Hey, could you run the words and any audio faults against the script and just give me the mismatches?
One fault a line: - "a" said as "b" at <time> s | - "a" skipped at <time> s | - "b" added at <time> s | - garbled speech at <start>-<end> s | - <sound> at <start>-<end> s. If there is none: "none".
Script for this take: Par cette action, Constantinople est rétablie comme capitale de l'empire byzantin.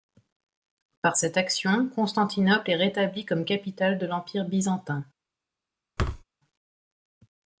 - thud at 6.0-6.2 s